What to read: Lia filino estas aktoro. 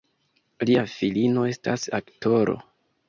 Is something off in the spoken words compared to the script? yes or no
no